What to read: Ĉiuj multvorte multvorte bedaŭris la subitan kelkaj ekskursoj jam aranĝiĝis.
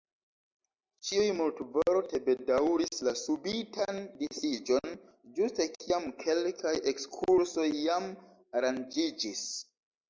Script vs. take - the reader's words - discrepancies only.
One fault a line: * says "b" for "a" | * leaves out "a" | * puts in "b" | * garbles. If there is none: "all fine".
* leaves out "multvorte"
* puts in "disiĝon ĝuste kiam"